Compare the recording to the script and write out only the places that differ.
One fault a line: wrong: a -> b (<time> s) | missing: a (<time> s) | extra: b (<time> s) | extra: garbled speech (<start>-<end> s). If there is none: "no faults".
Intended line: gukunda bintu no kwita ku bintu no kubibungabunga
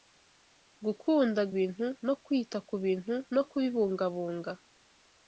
no faults